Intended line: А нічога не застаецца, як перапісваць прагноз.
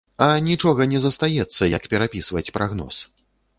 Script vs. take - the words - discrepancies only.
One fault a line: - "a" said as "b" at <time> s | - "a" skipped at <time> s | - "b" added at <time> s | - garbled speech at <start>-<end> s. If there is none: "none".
none